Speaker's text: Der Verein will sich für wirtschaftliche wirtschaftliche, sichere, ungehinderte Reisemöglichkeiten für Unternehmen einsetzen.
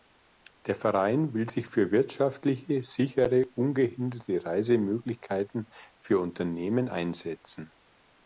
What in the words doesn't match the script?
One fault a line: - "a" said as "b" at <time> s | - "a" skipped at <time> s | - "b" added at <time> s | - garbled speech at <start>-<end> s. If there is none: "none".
- "wirtschaftliche" skipped at 2.8 s